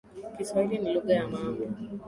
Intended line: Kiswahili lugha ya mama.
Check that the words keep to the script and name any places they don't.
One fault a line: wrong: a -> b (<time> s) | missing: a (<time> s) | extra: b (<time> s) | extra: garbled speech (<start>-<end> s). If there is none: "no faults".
extra: ni (0.8 s)